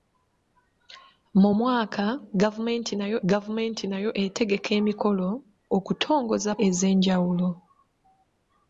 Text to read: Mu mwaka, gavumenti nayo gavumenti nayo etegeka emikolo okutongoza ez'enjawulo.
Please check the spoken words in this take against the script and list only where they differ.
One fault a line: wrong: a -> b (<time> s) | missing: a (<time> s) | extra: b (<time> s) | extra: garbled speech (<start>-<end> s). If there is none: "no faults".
no faults